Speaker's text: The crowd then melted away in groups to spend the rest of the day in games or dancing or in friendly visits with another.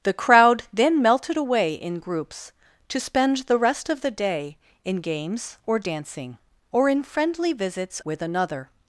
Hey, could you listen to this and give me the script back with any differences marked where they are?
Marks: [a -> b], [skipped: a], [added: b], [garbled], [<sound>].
The crowd then melted away in groups to spend the rest of the day in games or dancing or in friendly visits with another.